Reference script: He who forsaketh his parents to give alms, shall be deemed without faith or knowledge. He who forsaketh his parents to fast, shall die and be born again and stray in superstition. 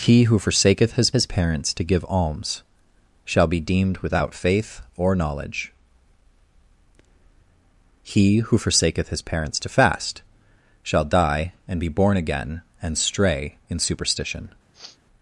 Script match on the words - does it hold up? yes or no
no